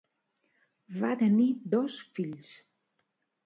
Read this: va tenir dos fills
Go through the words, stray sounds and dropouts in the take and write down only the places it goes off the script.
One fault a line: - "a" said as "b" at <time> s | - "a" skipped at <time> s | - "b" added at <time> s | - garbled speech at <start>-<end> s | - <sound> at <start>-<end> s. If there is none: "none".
none